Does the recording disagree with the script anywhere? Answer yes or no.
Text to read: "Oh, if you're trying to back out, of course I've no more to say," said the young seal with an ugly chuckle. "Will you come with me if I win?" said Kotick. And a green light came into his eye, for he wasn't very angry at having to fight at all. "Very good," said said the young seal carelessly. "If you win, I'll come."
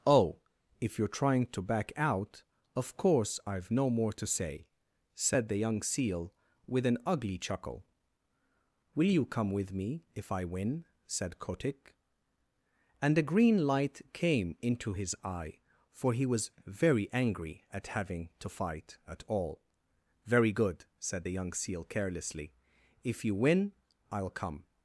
yes